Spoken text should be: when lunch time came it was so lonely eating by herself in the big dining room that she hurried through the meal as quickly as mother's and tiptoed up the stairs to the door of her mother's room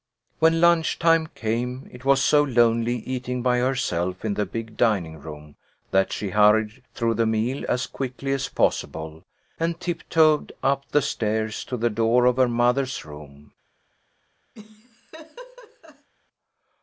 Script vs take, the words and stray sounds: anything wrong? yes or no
yes